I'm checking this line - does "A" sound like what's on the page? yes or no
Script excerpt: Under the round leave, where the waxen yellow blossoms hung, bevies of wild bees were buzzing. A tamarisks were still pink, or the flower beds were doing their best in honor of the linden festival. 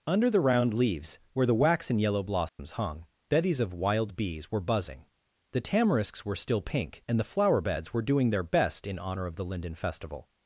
no